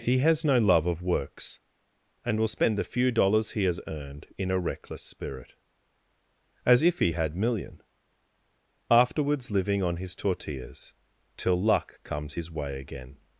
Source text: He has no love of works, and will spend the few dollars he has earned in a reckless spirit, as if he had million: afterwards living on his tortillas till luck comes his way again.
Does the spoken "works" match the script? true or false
true